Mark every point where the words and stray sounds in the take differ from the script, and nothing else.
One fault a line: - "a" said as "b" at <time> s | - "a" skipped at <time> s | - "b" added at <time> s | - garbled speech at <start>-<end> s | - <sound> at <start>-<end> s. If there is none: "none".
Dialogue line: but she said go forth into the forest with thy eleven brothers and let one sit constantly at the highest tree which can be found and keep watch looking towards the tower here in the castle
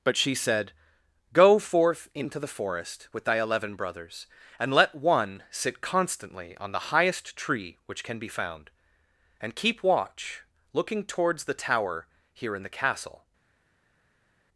- "at" said as "on" at 6.6 s